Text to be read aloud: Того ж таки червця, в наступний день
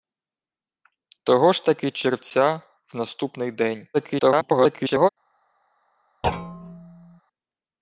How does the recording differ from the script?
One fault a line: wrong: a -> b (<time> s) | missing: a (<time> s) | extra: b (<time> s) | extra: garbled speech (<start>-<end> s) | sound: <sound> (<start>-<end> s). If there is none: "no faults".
extra: garbled speech (3.9-5.1 s)
sound: thud (6.2-7.2 s)